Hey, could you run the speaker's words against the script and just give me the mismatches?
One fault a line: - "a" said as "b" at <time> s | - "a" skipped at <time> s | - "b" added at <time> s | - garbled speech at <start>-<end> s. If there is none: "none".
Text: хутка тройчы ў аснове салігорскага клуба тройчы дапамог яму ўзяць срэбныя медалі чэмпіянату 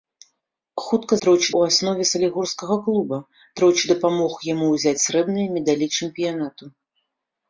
none